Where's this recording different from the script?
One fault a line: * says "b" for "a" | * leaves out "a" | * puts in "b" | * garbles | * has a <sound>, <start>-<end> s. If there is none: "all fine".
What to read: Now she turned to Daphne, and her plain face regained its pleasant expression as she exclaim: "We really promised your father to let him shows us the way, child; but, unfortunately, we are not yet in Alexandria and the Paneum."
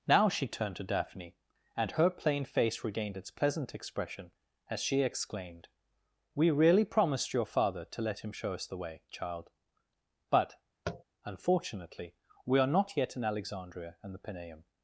* says "exclaimed" for "exclaim"
* says "show" for "shows"
* has a tap, 10.8-11.0 s